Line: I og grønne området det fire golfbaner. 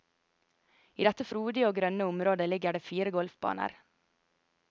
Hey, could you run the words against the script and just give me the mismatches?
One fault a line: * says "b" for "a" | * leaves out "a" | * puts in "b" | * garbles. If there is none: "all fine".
* puts in "dette frodige"
* puts in "ligger"